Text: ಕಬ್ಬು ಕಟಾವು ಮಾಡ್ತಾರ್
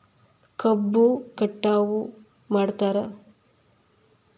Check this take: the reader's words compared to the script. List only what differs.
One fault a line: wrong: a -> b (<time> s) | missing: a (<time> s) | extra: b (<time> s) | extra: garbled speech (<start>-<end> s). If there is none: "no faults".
no faults